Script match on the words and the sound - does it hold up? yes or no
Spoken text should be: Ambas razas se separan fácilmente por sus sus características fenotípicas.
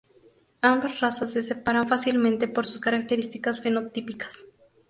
no